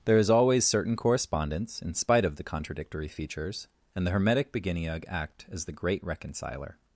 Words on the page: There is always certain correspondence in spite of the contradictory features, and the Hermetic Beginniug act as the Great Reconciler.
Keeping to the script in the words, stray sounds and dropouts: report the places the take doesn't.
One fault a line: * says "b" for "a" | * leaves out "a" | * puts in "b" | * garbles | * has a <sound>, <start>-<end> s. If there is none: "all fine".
all fine